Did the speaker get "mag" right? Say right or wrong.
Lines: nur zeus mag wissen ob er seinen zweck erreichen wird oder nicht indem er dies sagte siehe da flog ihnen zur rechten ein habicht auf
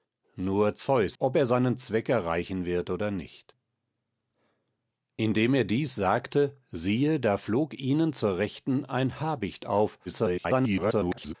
wrong